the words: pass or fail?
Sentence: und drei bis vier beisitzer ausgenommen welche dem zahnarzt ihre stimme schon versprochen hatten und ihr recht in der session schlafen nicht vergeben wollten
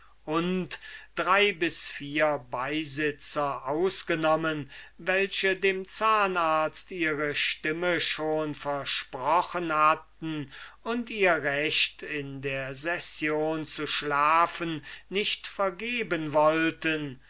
fail